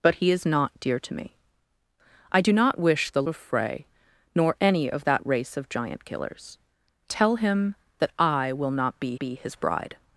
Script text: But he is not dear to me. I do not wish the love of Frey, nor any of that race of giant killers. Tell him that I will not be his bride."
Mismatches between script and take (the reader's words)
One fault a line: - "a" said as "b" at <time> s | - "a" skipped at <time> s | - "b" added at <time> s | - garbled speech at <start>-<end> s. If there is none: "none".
- "love" skipped at 3.2 s
- "be" added at 9.2 s